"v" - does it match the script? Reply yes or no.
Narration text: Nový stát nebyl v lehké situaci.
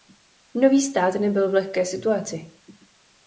yes